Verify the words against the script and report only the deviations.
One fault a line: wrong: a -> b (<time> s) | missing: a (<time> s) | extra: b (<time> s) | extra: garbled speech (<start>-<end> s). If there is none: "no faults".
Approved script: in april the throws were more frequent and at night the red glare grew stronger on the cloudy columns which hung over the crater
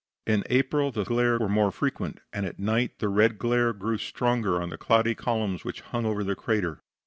wrong: throws -> glare (1.0 s)